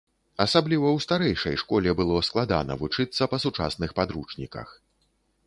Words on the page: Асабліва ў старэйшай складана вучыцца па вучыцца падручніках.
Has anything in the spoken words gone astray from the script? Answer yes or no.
yes